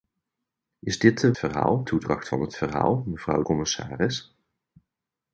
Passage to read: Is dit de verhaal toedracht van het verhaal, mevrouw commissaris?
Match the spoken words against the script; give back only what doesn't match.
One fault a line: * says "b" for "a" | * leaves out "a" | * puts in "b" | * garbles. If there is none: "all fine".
all fine